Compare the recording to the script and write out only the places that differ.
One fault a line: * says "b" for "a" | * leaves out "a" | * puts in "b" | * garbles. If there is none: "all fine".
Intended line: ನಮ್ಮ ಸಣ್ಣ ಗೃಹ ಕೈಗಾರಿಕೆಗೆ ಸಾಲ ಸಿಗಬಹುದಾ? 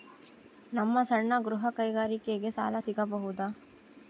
all fine